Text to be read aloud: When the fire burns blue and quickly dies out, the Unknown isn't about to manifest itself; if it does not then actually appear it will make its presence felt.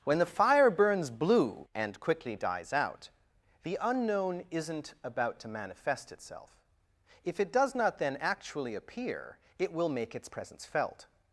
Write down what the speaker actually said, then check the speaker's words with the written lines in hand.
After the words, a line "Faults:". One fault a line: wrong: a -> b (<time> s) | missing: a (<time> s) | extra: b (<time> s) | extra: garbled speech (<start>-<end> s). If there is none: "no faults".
When the fire burns blue and quickly dies out, the Unknown isn't about to manifest itself; if it does not then actually appear it will make its presence felt.
Faults:
no faults